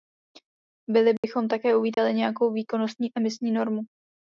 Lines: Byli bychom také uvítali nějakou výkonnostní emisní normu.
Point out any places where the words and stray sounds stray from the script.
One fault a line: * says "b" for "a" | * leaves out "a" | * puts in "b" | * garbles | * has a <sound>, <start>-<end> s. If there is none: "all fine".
* has a dropout, 1.2-1.2 s
* has a dropout, 1.9-2.0 s